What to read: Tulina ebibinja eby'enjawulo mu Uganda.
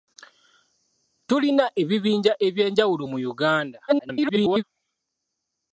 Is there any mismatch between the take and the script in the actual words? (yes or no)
yes